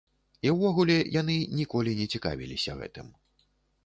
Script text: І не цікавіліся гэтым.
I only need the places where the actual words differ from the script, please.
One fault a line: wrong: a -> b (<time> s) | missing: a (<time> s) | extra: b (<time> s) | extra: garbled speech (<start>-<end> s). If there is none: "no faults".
extra: ўвогуле яны ніколі (0.5 s)